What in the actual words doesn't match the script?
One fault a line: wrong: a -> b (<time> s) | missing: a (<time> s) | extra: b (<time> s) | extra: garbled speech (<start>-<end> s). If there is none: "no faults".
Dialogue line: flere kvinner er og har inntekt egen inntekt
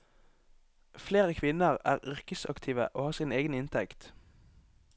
extra: yrkesaktive (2.0 s)
wrong: inntekt -> sin (3.1 s)